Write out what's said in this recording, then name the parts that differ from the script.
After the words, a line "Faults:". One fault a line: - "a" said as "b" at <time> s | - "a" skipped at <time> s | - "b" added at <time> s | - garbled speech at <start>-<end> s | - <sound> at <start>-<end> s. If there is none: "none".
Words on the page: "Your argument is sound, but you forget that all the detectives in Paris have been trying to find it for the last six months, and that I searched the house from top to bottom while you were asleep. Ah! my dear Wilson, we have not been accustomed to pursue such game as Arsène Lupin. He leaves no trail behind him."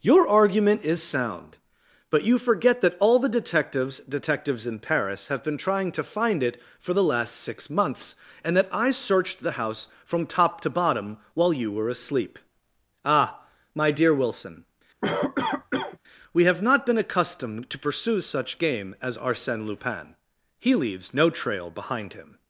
"Your argument is sound, but you forget that all the detectives detectives in Paris have been trying to find it for the last six months, and that I searched the house from top to bottom while you were asleep. Ah! my dear Wilson, we have not been accustomed to pursue such game as Arsène Lupin. He leaves no trail behind him."
Faults:
- "detectives" added at 4.0 s
- cough at 15.0-16.0 s